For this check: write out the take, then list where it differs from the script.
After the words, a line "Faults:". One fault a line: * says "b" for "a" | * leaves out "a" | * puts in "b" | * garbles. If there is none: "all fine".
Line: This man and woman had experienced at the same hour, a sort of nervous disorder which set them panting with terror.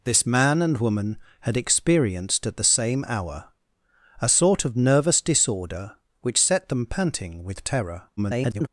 This man and woman had experienced at the same hour, a sort of nervous disorder which set them panting with terror. [garbled]
Faults:
* garbles